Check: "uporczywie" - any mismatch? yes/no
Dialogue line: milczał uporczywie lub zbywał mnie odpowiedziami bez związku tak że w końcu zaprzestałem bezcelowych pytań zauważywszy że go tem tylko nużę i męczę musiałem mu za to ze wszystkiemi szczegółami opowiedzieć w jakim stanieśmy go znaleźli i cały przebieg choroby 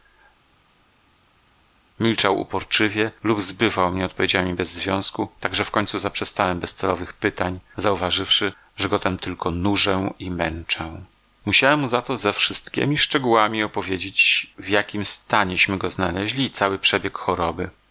no